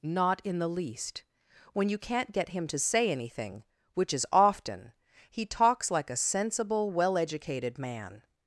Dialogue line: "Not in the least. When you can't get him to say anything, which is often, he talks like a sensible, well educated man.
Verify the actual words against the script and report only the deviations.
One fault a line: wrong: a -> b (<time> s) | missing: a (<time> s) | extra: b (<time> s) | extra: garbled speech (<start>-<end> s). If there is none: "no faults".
no faults